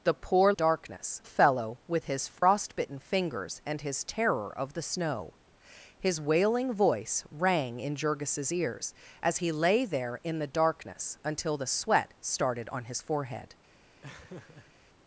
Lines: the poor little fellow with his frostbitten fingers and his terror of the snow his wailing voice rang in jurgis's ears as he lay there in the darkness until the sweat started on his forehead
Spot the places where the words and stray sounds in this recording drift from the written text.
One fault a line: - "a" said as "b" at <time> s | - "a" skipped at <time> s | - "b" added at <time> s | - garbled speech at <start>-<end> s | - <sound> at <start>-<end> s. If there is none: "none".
- "little" said as "darkness" at 0.5 s
- dropout at 2.4-2.4 s
- laugh at 14.0-14.7 s